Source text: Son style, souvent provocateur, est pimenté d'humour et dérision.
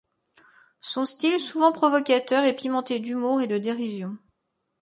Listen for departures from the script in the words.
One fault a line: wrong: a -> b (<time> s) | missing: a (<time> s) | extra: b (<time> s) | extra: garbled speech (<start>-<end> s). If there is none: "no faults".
extra: de (3.5 s)